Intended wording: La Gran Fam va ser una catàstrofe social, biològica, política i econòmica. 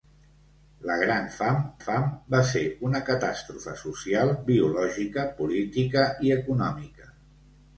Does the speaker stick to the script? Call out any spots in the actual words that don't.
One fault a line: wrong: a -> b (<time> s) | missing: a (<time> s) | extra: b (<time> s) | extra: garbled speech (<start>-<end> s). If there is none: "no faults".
extra: Fam (1.8 s)